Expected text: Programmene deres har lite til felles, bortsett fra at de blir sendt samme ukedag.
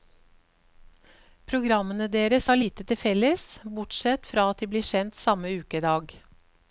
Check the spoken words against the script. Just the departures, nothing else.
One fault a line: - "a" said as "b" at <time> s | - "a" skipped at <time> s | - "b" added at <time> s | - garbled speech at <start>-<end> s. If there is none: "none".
none